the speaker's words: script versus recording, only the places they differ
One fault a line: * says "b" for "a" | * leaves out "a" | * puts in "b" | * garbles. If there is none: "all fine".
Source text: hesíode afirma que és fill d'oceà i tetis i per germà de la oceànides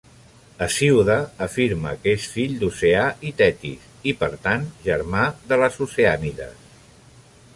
* puts in "tant"
* says "les" for "la"